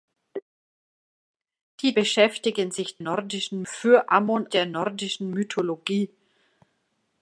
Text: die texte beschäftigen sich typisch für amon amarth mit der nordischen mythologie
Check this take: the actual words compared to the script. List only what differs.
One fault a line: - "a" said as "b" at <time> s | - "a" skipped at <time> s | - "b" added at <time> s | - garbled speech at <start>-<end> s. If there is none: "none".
- "texte" skipped at 1.9 s
- "typisch" said as "nordischen" at 3.0 s
- "amarth mit" skipped at 4.5 s